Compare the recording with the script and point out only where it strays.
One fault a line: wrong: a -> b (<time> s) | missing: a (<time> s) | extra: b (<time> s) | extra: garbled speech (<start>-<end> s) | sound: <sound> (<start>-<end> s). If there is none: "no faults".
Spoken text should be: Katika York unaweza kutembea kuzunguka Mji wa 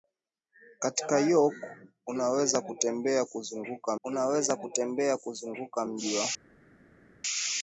extra: unaweza kutembea kuzunguka (4.0 s)